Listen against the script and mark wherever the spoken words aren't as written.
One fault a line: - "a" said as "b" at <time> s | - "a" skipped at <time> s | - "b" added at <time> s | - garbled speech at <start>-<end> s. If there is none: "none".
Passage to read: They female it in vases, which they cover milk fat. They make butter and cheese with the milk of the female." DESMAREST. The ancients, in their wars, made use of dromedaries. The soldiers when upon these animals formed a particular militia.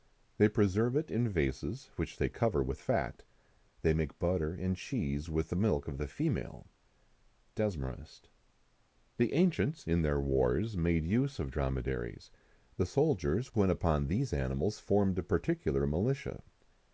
- "female" said as "preserve" at 0.5 s
- "milk" said as "with" at 2.6 s